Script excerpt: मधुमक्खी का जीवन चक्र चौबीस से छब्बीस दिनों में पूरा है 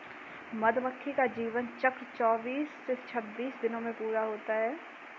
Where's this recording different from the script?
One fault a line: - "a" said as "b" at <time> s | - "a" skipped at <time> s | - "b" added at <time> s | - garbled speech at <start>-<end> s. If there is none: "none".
- "होता" added at 4.2 s